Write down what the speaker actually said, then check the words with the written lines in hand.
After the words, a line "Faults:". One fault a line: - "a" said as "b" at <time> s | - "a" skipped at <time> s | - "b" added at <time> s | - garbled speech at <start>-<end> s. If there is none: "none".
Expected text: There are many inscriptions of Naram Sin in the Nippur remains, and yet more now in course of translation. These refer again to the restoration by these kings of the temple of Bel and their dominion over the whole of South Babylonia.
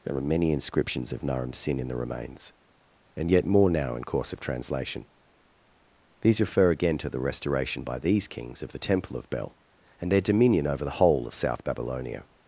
There are many inscriptions of Naram Sin in the remains, and yet more now in course of translation. These refer again to the restoration by these kings of the temple of Bel and their dominion over the whole of South Babylonia.
Faults:
- "Nippur" skipped at 1.9 s